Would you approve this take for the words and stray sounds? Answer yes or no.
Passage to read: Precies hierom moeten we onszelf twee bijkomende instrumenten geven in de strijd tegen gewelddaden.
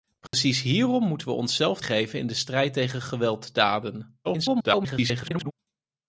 no